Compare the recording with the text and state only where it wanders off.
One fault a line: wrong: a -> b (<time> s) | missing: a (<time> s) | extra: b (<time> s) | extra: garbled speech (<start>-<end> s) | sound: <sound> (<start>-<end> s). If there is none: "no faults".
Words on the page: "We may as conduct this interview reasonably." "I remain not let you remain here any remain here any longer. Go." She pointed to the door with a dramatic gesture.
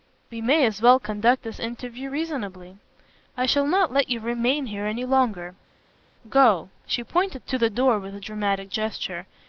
extra: well (0.8 s)
wrong: remain -> shall (3.5 s)
missing: remain here any (5.0 s)